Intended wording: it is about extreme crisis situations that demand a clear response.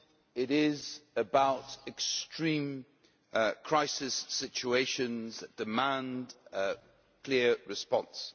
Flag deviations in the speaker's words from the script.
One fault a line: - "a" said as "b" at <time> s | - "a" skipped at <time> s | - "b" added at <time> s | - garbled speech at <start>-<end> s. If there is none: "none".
none